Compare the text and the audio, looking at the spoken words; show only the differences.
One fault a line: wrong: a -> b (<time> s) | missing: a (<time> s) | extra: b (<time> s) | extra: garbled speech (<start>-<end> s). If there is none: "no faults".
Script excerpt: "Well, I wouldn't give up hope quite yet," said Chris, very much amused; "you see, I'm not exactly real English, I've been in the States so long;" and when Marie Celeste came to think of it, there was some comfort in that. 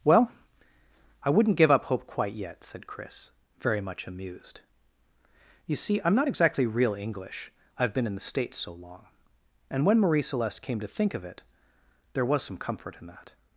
no faults